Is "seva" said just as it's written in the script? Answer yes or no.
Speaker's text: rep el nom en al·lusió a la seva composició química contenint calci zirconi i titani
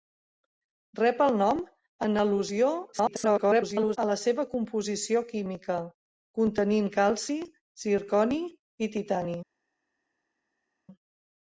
yes